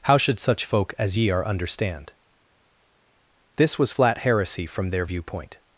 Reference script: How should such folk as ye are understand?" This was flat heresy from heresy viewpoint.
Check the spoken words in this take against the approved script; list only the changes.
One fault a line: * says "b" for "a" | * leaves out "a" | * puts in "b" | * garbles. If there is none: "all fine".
* says "their" for "heresy"